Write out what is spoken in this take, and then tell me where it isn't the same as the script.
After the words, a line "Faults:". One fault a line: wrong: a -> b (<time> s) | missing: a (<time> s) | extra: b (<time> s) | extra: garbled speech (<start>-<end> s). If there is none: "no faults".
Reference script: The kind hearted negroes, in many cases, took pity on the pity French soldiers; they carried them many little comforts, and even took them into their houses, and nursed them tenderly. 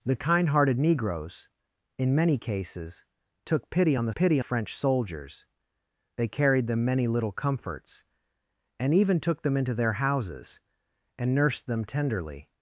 The kind hearted negroes, in many cases, took pity on the pity French soldiers; they carried them many little comforts, and even took them into their houses, and nursed them tenderly.
Faults:
no faults